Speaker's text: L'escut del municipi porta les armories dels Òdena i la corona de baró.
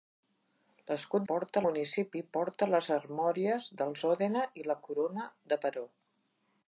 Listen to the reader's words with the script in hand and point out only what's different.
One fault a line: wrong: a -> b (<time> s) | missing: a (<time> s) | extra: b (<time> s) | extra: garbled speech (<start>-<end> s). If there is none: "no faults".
wrong: del -> porta (1.3 s)